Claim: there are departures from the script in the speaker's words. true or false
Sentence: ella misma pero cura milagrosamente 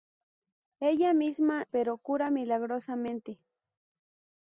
false